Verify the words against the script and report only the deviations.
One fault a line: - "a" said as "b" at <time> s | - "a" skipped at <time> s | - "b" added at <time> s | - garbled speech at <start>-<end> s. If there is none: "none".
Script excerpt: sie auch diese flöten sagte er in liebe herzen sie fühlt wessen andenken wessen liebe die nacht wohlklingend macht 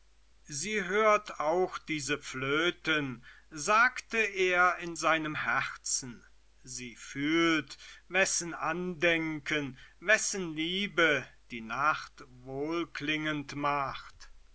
- "hört" added at 0.8 s
- "liebe" said as "seinem" at 5.0 s